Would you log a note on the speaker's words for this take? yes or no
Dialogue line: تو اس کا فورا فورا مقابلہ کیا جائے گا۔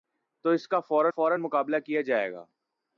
no